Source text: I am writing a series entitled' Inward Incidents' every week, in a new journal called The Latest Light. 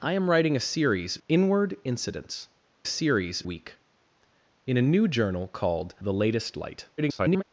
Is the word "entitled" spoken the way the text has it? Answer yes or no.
no